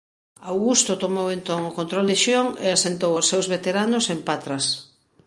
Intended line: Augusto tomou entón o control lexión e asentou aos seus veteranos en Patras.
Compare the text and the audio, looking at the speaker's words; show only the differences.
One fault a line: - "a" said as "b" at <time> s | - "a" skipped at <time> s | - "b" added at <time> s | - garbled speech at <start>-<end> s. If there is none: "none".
none